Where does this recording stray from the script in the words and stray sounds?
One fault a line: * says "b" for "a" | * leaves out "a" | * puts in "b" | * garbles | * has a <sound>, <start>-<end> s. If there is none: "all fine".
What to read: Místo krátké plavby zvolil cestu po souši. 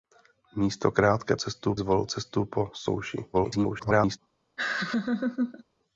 * says "cestu" for "plavby"
* garbles
* has a laugh, 4.6-5.6 s